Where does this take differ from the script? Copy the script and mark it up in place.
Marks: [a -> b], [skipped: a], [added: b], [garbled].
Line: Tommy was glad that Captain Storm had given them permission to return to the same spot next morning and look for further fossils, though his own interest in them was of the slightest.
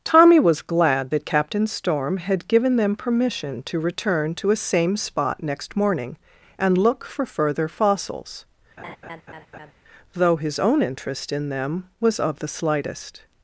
Tommy was glad that Captain Storm had given them permission to return to [the -> a] same spot next morning and look for further fossils, though his own interest in them was of the slightest.